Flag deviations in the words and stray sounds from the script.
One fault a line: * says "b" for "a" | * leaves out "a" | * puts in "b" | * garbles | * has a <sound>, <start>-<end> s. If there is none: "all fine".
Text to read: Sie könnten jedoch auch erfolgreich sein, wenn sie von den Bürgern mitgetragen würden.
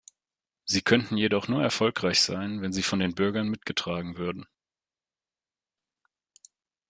* says "nur" for "auch"